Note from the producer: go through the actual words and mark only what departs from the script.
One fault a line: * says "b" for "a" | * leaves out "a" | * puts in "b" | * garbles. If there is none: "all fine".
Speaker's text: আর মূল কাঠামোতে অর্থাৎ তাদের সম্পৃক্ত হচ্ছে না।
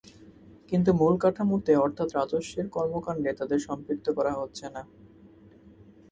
* says "কিন্তু" for "আর"
* puts in "রাজস্বের কর্মকাণ্ডে"
* puts in "করা"